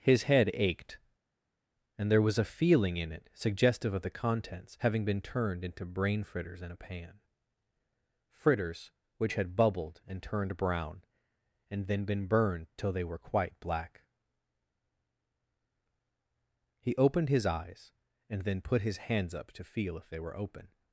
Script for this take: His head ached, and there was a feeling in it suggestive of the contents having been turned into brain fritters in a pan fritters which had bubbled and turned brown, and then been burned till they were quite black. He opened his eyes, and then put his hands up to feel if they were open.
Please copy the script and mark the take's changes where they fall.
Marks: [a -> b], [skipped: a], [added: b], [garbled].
His head ached, and there was a feeling in it suggestive of the contents having been turned into brain fritters in a pan fritters which had bubbled and turned brown, and then been burned till they were quite black. He opened his eyes, and then put his hands up to feel if they were open.